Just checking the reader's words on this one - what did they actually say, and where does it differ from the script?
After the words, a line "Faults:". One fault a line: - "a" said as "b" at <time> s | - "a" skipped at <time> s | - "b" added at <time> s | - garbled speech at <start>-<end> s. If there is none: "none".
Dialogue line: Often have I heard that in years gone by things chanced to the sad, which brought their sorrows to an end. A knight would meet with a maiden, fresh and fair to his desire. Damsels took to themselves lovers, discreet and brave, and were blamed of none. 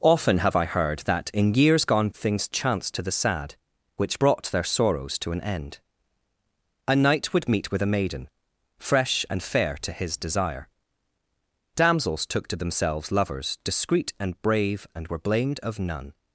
Often have I heard that in years gone things chanced to the sad, which brought their sorrows to an end. A knight would meet with a maiden, fresh and fair to his desire. Damsels took to themselves lovers, discreet and brave, and were blamed of none.
Faults:
- "by" skipped at 2.1 s